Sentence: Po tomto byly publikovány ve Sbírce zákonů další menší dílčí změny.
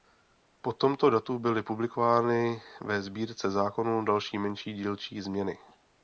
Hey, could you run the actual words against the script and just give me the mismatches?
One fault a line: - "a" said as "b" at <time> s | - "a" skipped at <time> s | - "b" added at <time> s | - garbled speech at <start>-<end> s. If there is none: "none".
- "datu" added at 1.1 s